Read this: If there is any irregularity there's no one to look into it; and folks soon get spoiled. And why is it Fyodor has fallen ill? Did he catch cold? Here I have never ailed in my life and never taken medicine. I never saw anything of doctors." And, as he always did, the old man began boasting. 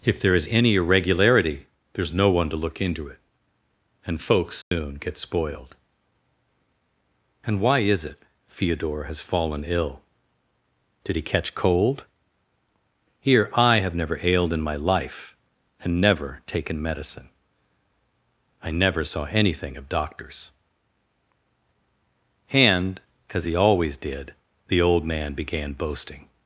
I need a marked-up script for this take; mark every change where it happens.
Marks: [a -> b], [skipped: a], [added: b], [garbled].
If there is any irregularity there's no one to look into it; and folks soon get spoiled. And why is it Fyodor has fallen ill? Did he catch cold? Here I have never ailed in my life and never taken medicine. I never saw anything of doctors." And, as he always did, the old man began boasting.